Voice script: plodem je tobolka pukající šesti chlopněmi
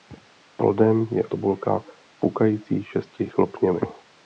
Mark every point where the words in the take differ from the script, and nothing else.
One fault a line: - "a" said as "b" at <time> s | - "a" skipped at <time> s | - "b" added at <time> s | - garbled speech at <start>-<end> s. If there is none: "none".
none